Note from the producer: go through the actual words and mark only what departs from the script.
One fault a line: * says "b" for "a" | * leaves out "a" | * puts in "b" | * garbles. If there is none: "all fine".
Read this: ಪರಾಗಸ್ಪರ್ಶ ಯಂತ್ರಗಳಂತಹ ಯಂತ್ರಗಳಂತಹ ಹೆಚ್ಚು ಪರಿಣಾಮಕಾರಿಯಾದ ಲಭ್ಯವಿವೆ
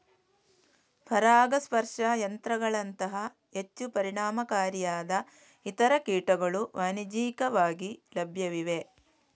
* leaves out "ಯಂತ್ರಗಳಂತಹ"
* puts in "ಇತರ ಕೀಟಗಳು ವಾಣಿಜ್ಯಿಕವಾಗಿ"